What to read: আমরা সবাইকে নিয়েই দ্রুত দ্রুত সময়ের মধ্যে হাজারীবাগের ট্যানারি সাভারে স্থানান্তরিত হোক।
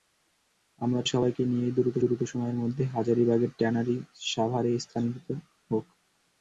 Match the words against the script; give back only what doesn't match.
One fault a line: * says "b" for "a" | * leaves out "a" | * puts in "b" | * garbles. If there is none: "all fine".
all fine